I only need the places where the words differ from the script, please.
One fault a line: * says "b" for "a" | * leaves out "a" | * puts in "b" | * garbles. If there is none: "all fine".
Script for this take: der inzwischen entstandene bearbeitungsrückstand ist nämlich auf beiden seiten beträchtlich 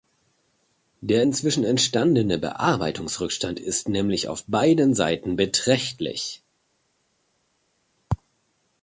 all fine